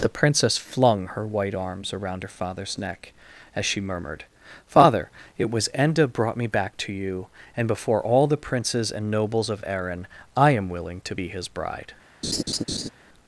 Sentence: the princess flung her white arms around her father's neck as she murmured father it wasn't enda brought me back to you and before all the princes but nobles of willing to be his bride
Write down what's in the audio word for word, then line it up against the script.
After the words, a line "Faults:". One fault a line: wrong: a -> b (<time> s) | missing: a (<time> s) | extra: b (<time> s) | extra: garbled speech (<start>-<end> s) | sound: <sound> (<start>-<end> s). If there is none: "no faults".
the princess flung her white arms around her father's neck as she murmured father it was enda brought me back to you and before all the princes and nobles of erin i am willing to be his bride
Faults:
wrong: wasn't -> was (5.5 s)
wrong: but -> and (8.9 s)
extra: erin i am (9.7 s)
sound: laugh (12.2-12.9 s)